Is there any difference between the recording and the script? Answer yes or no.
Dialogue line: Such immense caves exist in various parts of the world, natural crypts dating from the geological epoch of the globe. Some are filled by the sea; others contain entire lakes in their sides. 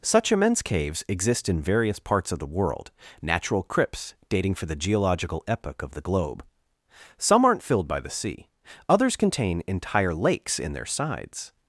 yes